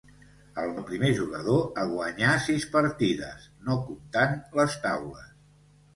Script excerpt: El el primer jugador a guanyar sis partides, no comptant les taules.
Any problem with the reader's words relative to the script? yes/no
no